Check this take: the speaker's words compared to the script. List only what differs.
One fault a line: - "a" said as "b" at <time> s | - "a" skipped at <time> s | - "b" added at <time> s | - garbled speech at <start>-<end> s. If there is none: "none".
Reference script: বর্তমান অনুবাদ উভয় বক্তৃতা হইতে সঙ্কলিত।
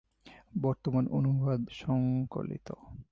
- "উভয় বক্তৃতা হইতে" skipped at 1.6 s